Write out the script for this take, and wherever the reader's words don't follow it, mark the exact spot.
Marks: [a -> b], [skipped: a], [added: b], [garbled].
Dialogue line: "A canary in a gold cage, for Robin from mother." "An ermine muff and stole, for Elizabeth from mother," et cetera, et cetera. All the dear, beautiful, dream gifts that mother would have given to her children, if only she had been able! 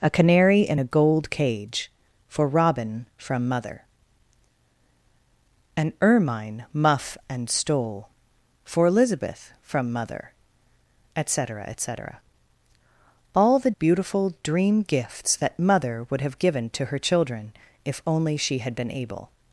"A canary in a gold cage, for Robin from mother." "An ermine muff and stole, for Elizabeth from mother," et cetera, et cetera. All the [skipped: dear,] beautiful, dream gifts that mother would have given to her children, if only she had been able!